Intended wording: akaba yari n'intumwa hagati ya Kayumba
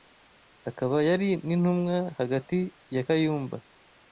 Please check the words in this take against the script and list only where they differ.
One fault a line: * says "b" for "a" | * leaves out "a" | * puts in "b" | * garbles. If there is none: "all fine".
all fine